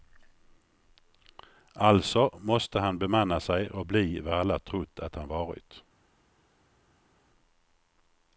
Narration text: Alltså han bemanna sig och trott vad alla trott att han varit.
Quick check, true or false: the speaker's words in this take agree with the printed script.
false